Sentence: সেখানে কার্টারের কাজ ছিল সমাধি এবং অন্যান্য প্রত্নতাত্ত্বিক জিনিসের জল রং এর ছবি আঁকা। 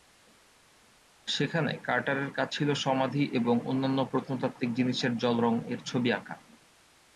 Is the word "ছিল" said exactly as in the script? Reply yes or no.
yes